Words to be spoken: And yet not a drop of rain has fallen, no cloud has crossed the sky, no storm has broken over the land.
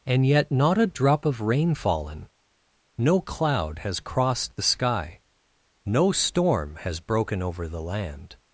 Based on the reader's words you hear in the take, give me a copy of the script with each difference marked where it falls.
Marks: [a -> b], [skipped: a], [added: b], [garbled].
And yet not a drop of rain [skipped: has] fallen, no cloud has crossed the sky, no storm has broken over the land.